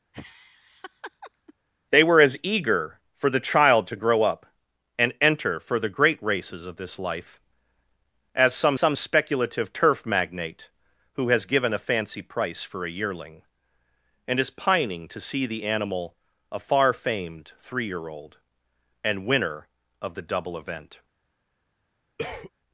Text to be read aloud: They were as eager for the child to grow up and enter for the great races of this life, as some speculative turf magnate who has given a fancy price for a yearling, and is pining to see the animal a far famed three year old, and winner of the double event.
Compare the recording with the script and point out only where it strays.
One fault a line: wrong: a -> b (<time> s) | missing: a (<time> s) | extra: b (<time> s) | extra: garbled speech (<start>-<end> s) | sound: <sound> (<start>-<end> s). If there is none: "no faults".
sound: laugh (0.1-1.5 s)
extra: some (8.7 s)
sound: cough (22.2-22.5 s)